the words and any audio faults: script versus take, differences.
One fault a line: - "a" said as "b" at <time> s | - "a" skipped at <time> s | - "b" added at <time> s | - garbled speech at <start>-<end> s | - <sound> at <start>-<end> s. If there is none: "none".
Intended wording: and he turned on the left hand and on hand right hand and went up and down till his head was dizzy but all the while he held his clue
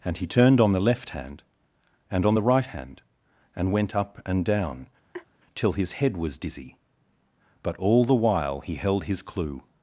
- "hand" said as "the" at 2.3 s
- laugh at 5.1-5.3 s